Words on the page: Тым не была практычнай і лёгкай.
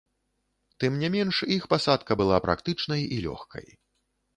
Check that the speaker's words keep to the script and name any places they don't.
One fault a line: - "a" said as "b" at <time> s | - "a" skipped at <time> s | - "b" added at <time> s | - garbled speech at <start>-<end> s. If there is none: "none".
- "менш іх пасадка" added at 1.2 s